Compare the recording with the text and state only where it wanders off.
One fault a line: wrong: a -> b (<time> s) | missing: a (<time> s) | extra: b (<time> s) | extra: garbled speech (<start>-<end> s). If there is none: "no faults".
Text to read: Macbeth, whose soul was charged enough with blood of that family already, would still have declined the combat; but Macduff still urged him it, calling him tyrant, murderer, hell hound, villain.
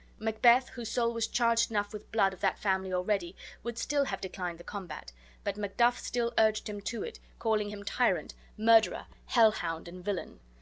extra: to (6.8 s)
extra: and (9.9 s)